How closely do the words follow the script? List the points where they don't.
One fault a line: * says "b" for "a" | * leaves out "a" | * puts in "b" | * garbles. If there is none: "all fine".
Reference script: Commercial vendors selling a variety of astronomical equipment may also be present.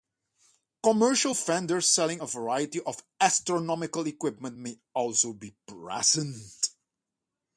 all fine